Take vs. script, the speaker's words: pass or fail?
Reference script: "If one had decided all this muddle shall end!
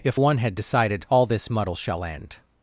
pass